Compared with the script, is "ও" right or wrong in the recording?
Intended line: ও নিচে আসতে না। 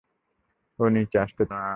right